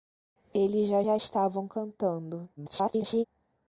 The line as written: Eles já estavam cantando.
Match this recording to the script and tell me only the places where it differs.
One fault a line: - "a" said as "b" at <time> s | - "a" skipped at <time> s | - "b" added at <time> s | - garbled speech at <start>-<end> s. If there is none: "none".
- "já" added at 1.0 s
- garbled speech at 2.6-3.2 s